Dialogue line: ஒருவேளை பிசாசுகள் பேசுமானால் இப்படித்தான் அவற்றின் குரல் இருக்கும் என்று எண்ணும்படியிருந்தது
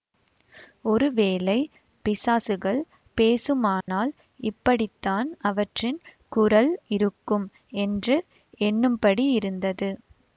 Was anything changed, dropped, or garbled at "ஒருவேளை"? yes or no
no